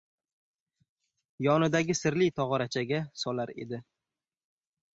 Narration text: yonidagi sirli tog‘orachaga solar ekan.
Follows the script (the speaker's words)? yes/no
no